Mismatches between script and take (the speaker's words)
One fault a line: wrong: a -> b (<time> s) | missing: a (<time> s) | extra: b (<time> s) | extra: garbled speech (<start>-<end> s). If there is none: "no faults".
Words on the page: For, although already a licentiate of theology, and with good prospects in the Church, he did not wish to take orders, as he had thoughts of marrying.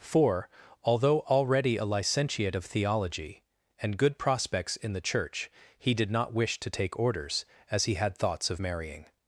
missing: with (4.0 s)